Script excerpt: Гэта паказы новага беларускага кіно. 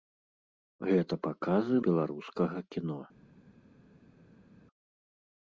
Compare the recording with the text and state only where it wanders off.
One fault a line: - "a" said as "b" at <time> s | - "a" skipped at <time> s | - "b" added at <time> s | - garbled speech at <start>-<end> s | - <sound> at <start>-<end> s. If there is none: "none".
- "новага" skipped at 1.8 s